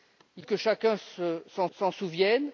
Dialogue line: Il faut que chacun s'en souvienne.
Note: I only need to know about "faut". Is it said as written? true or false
false